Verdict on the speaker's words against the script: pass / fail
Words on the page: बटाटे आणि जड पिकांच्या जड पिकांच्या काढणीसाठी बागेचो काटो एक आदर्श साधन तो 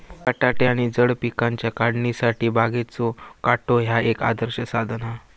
fail